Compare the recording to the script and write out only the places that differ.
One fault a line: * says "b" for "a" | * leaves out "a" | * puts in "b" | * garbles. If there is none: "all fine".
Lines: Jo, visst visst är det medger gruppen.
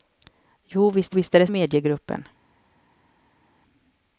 all fine